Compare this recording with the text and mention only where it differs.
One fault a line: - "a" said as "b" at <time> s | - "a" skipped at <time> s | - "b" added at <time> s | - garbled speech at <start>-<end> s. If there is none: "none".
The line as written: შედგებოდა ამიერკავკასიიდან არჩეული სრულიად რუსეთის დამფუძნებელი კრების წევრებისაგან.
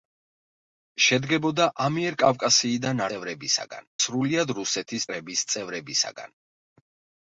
- "არჩეული" said as "წევრებისაგან" at 3.1 s
- "დამფუძნებელი" skipped at 5.1 s